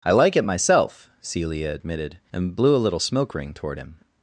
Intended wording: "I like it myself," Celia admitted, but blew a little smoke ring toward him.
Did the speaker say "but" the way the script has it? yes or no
no